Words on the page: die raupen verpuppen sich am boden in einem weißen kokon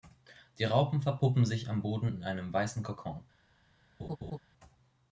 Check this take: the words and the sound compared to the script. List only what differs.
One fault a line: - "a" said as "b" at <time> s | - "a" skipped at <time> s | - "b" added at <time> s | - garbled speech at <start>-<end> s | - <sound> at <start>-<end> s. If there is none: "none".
- laugh at 4.0-4.4 s